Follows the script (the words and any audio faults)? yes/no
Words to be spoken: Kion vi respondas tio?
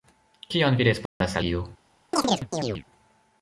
no